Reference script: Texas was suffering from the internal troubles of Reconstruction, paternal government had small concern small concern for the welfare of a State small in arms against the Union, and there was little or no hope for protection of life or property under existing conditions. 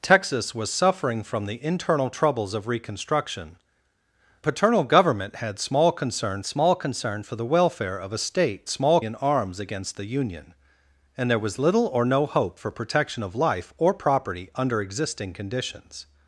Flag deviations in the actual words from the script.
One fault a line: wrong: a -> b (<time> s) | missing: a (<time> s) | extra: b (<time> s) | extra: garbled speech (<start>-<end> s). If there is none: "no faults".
no faults